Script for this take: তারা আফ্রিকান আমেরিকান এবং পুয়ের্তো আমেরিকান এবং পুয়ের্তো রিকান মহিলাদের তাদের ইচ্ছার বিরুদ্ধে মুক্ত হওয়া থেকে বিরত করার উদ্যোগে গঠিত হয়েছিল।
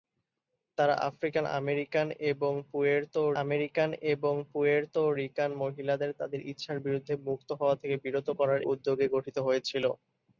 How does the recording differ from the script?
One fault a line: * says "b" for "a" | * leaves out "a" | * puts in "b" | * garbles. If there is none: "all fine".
all fine